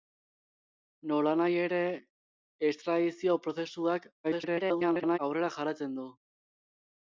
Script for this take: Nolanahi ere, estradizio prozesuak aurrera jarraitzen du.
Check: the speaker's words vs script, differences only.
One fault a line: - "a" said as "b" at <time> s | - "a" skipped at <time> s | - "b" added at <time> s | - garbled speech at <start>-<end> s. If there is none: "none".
- garbled speech at 4.2-5.2 s